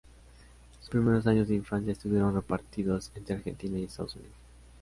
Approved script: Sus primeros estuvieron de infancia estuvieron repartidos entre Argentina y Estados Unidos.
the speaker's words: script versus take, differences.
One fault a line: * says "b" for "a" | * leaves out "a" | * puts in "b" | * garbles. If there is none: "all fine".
* says "años" for "estuvieron"